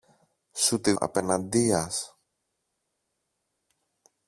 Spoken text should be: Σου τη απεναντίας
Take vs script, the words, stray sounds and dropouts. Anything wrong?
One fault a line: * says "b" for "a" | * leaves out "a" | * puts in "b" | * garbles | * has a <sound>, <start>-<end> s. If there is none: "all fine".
all fine